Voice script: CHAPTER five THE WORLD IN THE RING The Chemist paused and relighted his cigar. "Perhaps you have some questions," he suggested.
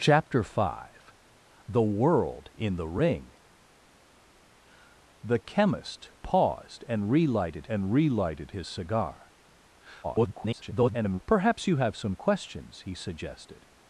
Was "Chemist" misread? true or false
false